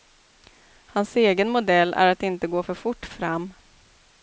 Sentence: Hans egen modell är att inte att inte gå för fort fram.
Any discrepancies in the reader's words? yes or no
yes